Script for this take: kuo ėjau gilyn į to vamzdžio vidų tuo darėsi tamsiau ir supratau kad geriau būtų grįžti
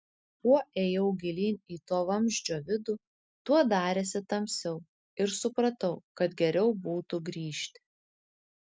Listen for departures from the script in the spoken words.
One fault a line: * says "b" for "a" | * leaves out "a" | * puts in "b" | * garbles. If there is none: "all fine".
all fine